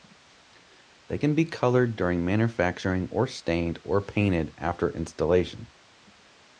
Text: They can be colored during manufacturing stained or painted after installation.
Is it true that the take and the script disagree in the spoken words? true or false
true